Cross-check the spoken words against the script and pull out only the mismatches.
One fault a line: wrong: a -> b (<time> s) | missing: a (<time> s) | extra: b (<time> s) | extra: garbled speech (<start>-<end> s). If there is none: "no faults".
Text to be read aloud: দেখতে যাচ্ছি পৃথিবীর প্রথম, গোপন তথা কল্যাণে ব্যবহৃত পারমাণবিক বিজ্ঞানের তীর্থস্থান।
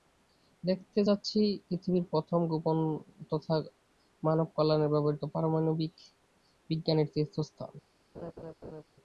extra: মানব (4.2 s)